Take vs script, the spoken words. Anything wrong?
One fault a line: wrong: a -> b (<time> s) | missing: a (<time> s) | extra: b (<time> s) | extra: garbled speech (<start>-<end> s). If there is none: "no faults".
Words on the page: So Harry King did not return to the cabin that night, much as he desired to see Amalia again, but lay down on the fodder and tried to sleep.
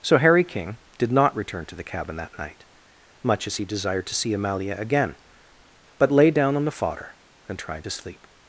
no faults